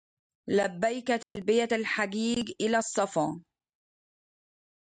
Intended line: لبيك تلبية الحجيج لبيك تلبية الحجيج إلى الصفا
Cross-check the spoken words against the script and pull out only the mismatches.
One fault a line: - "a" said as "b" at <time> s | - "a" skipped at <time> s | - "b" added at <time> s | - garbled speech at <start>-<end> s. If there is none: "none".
- "لبيك تلبية الحجيج" skipped at 2.5 s